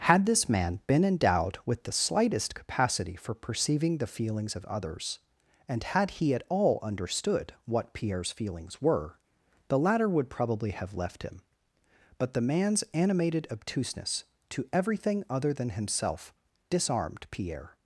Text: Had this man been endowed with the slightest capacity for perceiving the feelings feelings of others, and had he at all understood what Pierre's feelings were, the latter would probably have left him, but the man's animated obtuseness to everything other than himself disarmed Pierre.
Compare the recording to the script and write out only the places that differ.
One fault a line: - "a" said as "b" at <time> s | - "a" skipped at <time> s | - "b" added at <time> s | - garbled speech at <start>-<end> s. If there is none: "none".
- "feelings" skipped at 4.5 s